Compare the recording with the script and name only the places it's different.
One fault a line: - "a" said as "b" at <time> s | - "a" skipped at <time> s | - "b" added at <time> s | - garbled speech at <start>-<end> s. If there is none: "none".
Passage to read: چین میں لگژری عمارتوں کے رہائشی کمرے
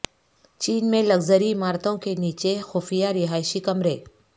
- "نیچے خفیہ" added at 2.1 s